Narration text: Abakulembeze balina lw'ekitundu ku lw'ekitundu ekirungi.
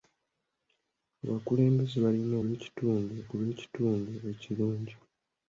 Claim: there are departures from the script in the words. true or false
false